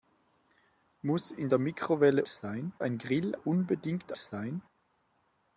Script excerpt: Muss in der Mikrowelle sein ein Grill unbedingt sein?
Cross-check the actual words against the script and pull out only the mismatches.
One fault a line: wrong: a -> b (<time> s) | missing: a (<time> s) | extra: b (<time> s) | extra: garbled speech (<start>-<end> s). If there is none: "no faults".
no faults